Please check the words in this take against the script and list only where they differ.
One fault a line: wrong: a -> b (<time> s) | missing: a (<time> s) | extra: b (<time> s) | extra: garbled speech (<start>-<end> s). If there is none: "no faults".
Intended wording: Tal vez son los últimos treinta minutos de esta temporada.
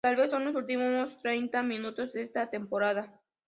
no faults